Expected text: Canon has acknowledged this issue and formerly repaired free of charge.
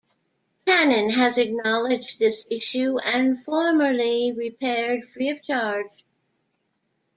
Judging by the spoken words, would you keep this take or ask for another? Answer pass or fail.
pass